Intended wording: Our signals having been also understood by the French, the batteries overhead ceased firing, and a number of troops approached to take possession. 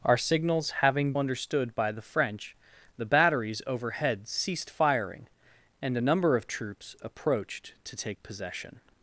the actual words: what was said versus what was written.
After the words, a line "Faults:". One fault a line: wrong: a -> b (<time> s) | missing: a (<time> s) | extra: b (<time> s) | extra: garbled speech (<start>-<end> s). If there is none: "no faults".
Our signals having understood by the French, the batteries overhead ceased firing, and a number of troops approached to take possession.
Faults:
missing: been also (1.1 s)